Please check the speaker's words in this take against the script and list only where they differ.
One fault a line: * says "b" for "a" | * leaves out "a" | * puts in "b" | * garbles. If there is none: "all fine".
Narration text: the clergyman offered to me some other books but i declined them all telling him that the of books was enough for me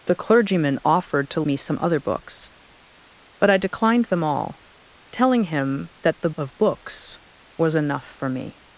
all fine